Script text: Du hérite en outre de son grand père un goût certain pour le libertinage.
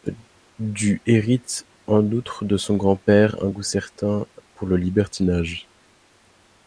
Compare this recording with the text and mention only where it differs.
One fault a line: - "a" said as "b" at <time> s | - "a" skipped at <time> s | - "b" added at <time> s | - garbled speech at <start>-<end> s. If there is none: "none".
none